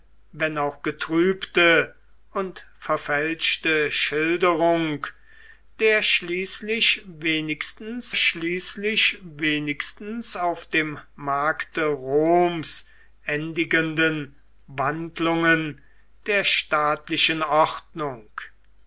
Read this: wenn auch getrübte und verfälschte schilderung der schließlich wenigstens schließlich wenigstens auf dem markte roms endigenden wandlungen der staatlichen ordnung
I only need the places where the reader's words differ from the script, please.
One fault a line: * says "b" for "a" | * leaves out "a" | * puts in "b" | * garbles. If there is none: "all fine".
all fine